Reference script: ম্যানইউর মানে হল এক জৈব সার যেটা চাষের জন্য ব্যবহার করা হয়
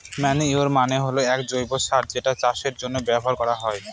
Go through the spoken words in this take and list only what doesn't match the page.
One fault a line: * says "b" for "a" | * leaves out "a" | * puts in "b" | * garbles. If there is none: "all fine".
all fine